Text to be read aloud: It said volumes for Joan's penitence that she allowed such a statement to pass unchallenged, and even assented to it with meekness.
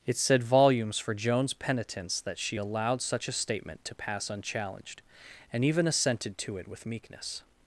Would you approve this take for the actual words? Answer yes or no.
yes